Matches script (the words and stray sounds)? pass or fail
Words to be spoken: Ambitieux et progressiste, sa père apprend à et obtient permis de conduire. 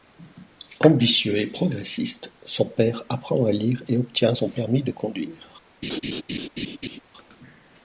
fail